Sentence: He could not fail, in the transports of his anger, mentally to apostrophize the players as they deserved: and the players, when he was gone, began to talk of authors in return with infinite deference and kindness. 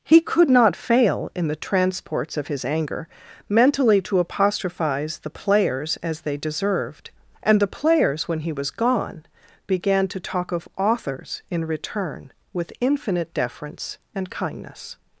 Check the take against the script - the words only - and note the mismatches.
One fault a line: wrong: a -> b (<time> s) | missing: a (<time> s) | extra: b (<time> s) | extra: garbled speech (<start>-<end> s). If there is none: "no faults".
no faults